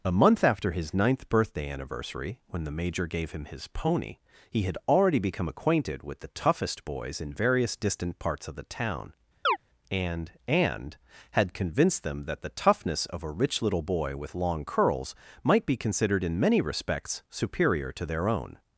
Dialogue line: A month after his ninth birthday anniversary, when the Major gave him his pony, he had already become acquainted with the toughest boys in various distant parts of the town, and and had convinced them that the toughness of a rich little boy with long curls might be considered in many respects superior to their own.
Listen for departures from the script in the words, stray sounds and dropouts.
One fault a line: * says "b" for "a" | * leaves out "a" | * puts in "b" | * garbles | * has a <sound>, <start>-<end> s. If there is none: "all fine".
* has a chirp, 9.4-9.6 s